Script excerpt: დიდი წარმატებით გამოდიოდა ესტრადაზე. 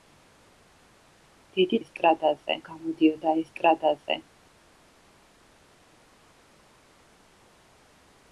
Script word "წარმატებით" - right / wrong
wrong